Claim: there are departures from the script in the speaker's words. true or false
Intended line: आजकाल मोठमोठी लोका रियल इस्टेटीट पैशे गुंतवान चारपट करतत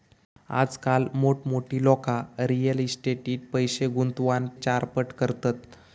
false